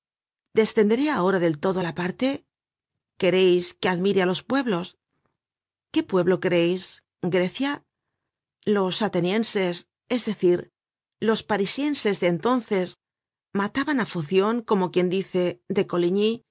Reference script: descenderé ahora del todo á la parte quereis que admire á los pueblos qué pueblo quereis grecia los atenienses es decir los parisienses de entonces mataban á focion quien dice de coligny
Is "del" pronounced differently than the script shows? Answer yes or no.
no